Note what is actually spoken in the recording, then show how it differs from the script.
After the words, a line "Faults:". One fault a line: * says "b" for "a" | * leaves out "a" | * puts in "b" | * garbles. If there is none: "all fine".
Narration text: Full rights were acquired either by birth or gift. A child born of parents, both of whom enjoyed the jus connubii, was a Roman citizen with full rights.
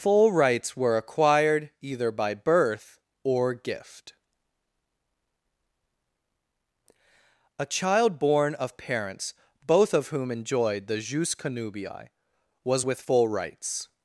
Full rights were acquired either by birth or gift. A child born of parents, both of whom enjoyed the jus connubii, was with full rights.
Faults:
* leaves out "a Roman citizen"